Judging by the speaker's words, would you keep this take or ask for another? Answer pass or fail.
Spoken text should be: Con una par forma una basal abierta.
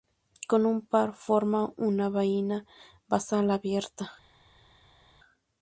fail